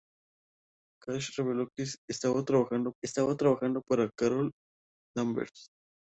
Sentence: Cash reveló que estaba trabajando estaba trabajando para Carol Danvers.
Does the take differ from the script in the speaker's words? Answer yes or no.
no